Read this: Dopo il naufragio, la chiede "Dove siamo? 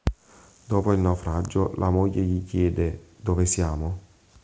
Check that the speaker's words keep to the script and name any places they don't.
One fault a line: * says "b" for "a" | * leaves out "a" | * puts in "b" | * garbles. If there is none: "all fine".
* puts in "moglie gli"